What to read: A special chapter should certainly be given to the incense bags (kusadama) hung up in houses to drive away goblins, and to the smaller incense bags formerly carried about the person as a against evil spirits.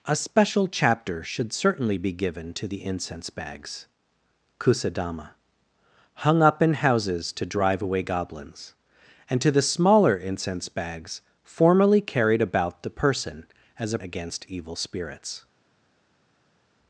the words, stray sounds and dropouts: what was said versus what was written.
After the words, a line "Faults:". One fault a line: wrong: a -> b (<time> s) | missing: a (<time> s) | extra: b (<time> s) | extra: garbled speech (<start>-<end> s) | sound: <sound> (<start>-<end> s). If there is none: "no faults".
A special chapter should certainly be given to the incense bags (kusadama) hung up in houses to drive away goblins, and to the smaller incense bags formerly carried about the person as a against evil spirits.
Faults:
no faults